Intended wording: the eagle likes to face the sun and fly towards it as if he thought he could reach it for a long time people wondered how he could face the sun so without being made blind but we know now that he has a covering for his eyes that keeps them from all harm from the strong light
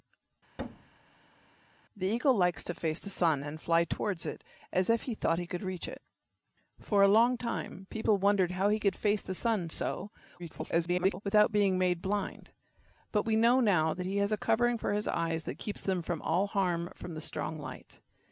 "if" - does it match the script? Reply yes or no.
yes